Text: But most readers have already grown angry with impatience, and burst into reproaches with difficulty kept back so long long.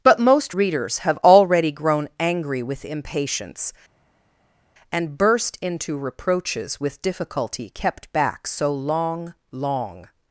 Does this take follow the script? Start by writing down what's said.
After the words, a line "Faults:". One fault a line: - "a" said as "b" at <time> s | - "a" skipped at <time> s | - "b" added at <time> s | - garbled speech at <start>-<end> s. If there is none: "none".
But most readers have already grown angry with impatience, and burst into reproaches with difficulty kept back so long long.
Faults:
none